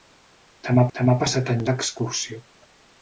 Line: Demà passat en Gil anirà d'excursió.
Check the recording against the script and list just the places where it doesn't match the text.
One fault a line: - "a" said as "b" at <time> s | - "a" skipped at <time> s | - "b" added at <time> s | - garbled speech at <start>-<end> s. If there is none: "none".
- "demà" added at 1.0 s
- "Gil anirà" skipped at 1.6 s